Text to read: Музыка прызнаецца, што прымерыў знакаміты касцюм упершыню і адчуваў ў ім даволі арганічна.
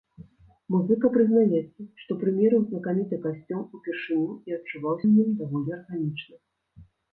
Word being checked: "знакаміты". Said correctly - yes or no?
yes